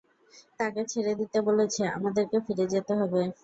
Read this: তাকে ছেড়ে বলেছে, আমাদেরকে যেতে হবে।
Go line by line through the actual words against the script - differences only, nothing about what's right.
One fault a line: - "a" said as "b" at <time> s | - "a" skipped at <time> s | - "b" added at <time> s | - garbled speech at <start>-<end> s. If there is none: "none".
- "দিতে" added at 1.2 s
- "ফিরে" added at 2.5 s